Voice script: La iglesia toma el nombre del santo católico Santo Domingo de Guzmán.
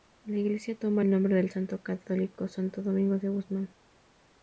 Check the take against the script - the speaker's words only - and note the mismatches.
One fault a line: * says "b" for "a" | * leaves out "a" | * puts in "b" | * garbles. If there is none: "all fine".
all fine